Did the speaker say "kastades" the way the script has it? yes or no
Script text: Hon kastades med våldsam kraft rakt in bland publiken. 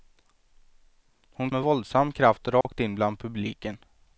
no